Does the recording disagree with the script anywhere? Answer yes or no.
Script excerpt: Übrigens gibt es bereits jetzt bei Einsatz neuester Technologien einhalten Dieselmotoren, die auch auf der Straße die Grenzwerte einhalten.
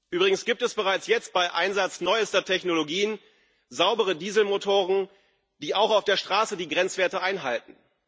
yes